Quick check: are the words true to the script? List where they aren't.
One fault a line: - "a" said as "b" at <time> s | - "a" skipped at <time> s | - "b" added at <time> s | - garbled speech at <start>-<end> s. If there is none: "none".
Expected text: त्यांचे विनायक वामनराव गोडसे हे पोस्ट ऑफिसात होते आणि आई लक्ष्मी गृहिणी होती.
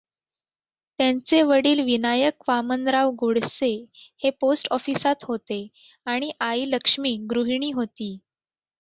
- "वडील" added at 1.4 s